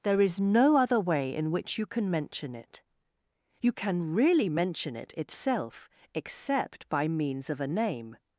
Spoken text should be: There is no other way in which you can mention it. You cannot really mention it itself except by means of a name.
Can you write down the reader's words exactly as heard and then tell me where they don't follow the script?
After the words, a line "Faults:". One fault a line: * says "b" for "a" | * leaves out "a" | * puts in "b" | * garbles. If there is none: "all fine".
There is no other way in which you can mention it. You can really mention it itself except by means of a name.
Faults:
* says "can" for "cannot"